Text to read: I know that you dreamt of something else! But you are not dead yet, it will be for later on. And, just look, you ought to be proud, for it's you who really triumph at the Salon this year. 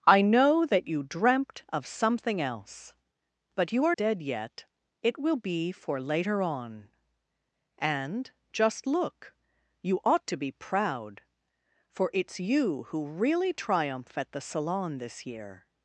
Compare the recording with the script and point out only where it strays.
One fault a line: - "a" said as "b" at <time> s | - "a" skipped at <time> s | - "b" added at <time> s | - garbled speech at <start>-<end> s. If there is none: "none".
- "not" skipped at 4.0 s